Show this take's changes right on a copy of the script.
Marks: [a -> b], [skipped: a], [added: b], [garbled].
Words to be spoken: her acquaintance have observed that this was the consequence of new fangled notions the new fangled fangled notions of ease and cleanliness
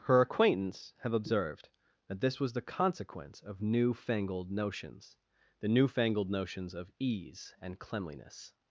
her acquaintance have observed that this was the consequence of new fangled notions the new fangled [skipped: fangled] notions of ease and cleanliness